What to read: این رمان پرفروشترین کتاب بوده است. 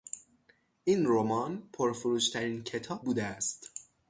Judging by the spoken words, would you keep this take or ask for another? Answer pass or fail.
pass